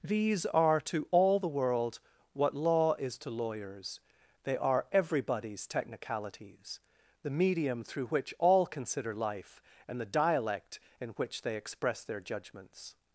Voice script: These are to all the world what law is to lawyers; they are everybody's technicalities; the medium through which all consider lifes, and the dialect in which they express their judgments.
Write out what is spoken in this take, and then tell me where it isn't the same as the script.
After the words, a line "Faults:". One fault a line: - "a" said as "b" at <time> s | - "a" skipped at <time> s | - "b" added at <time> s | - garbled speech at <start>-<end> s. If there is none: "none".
These are to all the world what law is to lawyers; they are everybody's technicalities; the medium through which all consider life, and the dialect in which they express their judgments.
Faults:
- "lifes" said as "life" at 9.1 s